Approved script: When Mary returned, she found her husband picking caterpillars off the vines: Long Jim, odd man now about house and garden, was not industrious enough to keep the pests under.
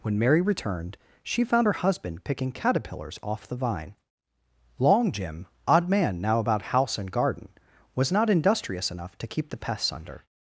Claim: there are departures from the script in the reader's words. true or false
true